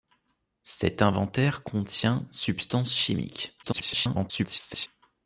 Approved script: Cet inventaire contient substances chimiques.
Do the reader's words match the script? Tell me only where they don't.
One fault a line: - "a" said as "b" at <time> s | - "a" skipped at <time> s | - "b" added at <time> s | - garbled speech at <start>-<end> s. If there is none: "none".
- garbled speech at 3.6-4.9 s